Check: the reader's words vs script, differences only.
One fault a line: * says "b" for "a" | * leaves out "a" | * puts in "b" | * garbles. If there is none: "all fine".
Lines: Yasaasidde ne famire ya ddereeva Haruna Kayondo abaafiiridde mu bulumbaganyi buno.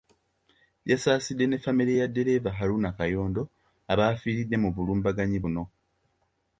all fine